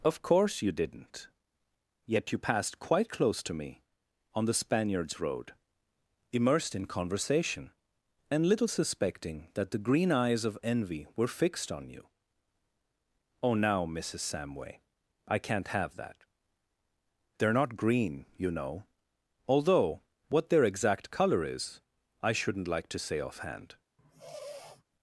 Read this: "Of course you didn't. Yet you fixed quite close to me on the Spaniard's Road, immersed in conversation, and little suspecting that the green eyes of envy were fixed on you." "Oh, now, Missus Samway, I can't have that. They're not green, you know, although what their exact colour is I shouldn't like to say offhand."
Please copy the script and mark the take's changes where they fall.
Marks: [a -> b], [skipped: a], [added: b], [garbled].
"Of course you didn't. Yet you [fixed -> passed] quite close to me on the Spaniard's Road, immersed in conversation, and little suspecting that the green eyes of envy were fixed on you." "Oh, now, Missus Samway, I can't have that. They're not green, you know, although what their exact colour is I shouldn't like to say offhand."